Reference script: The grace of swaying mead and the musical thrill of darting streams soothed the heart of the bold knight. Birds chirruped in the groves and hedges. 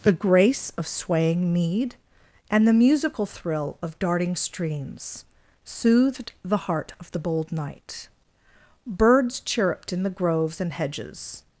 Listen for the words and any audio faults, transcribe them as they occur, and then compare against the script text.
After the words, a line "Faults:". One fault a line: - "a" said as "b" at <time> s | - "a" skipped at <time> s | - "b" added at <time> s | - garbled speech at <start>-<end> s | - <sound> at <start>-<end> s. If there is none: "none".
The grace of swaying mead and the musical thrill of darting streams soothed the heart of the bold knight. Birds chirruped in the groves and hedges.
Faults:
none